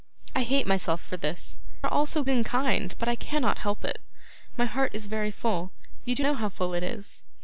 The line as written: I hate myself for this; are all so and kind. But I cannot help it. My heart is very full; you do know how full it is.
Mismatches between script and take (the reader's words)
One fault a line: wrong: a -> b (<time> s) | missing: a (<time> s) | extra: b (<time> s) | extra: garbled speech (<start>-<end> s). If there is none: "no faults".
no faults